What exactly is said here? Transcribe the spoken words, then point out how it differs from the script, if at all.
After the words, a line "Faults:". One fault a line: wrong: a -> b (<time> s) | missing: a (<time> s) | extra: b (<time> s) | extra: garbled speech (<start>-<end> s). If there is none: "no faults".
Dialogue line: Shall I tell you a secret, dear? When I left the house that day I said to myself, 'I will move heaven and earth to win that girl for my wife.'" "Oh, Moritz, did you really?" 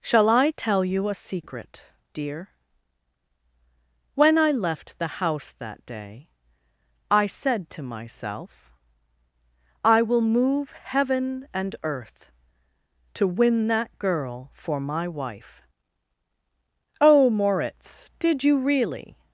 Shall I tell you a secret, dear? When I left the house that day I said to myself, 'I will move heaven and earth to win that girl for my wife.'" "Oh, Moritz, did you really?"
Faults:
no faults